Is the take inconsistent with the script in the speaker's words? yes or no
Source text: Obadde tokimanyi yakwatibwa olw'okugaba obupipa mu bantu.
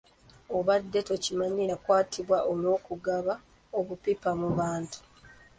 no